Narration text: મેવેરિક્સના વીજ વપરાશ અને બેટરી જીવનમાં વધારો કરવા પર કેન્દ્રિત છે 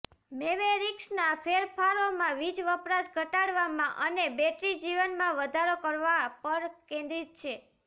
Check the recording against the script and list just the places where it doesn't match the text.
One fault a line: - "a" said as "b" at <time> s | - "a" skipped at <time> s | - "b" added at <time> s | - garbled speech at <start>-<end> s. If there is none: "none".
- "ફેરફારોમાં" added at 1.4 s
- "ઘટાડવામાં" added at 3.1 s